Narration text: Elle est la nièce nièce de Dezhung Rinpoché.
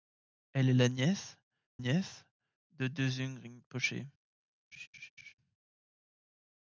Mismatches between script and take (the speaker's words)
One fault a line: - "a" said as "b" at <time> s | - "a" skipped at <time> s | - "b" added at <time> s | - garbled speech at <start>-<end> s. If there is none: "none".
none